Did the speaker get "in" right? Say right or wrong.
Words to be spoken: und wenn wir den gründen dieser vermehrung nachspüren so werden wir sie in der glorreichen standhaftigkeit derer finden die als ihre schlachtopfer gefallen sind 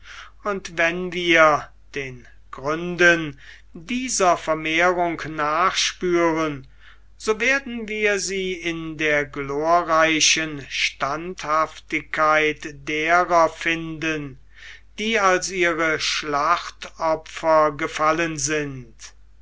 right